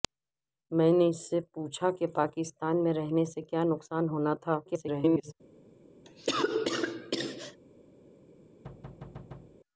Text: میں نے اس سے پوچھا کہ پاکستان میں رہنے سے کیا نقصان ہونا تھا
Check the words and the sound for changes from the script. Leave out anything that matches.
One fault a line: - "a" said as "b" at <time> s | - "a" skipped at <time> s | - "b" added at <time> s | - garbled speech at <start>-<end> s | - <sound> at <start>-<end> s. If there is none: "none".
- garbled speech at 4.7-5.3 s
- cough at 6.0-7.6 s
- thud at 8.6-9.6 s